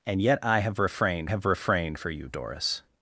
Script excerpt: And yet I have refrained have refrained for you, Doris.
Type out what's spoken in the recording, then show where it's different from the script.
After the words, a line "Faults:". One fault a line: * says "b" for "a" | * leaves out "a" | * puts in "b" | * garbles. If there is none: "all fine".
And yet I have refrained have refrained for you, Doris.
Faults:
all fine